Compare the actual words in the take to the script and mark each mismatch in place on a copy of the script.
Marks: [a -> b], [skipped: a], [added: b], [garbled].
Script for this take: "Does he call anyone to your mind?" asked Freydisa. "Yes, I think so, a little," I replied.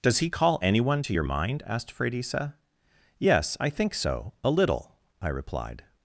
"Does he call anyone to your mind?" asked Freydisa. "Yes, I think so, a little," I replied.